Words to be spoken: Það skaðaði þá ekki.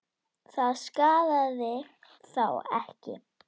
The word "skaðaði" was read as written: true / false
true